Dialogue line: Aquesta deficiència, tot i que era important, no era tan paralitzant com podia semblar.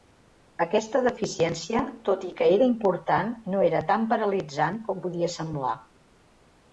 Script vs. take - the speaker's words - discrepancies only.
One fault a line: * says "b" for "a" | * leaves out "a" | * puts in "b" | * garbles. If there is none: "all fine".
all fine